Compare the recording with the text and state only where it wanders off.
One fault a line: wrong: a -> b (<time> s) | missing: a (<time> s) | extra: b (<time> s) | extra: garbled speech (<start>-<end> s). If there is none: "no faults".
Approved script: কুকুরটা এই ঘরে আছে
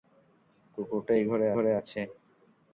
extra: ঘরে (1.5 s)